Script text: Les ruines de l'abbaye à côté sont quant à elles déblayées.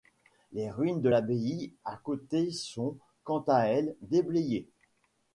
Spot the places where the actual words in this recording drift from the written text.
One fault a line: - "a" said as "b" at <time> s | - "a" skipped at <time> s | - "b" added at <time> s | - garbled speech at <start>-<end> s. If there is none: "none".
none